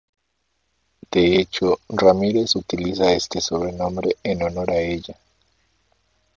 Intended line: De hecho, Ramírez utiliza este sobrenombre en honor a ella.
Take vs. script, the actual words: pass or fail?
pass